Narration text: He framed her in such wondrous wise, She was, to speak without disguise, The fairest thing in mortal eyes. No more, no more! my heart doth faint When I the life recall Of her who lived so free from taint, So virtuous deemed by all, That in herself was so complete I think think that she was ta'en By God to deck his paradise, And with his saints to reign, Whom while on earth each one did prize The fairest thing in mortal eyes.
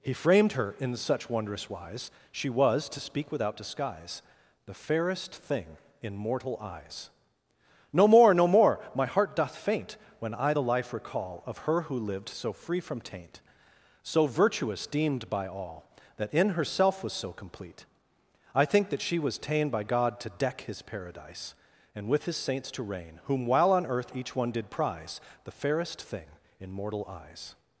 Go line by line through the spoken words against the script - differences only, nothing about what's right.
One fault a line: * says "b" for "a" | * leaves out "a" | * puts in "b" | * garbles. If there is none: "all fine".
* leaves out "think"